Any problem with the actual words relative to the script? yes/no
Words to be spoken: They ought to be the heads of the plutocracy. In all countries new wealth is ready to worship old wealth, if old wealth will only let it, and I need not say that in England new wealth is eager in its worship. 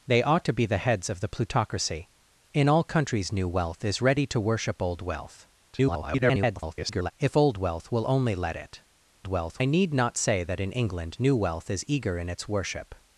yes